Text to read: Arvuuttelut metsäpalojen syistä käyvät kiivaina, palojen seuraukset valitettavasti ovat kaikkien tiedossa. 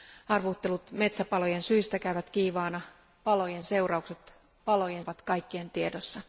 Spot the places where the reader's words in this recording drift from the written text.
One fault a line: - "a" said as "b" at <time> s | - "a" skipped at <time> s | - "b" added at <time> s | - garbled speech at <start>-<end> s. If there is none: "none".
- "valitettavasti" said as "palojen" at 4.6 s